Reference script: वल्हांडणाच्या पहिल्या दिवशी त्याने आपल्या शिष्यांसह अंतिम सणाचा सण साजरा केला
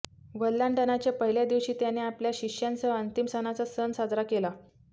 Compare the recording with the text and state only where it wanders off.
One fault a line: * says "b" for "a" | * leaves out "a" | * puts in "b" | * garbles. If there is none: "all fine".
all fine